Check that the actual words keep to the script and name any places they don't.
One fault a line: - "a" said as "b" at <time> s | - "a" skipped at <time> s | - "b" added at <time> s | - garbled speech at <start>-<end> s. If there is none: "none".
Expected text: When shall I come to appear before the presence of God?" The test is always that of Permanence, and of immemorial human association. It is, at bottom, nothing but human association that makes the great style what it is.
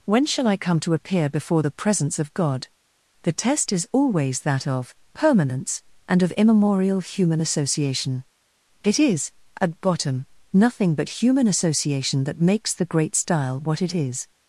none